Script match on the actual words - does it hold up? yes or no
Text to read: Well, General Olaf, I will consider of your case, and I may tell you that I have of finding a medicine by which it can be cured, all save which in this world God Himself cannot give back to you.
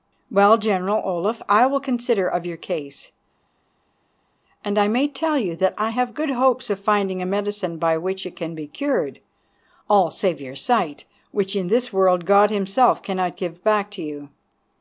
no